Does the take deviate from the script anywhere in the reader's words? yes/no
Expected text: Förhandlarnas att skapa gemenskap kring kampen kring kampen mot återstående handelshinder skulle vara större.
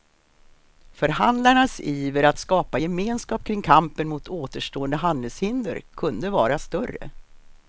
yes